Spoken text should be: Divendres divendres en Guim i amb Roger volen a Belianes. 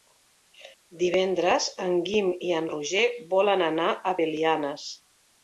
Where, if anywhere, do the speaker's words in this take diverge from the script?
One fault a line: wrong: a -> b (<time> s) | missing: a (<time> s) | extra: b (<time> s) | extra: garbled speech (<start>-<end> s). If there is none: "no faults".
missing: divendres (1.7 s)
wrong: amb -> en (2.6 s)
extra: anar (3.7 s)